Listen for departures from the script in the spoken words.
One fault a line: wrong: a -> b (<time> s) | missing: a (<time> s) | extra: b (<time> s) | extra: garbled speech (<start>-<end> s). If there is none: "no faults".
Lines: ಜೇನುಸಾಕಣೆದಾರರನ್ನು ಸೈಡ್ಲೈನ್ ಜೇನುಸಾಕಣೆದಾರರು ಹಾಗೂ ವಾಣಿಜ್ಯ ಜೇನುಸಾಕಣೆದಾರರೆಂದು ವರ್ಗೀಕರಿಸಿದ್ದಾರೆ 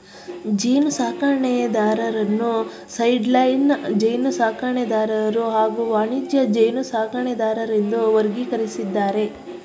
no faults